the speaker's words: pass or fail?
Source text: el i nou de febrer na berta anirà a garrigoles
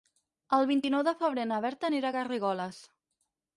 fail